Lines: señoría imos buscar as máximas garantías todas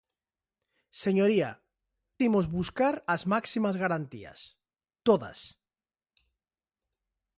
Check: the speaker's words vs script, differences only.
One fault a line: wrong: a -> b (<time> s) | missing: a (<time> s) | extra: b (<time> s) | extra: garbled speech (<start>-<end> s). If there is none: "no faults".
no faults